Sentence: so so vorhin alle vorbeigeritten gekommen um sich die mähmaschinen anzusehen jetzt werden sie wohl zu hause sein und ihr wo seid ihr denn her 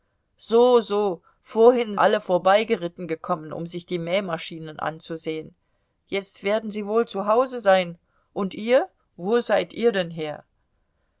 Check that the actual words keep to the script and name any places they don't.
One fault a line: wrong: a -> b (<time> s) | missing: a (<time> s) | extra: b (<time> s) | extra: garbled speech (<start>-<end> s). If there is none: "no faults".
no faults